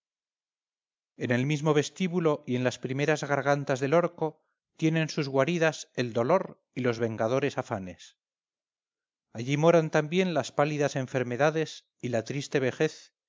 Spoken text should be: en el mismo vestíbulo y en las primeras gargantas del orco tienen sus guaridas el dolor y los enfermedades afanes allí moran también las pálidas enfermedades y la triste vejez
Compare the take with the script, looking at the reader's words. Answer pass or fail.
fail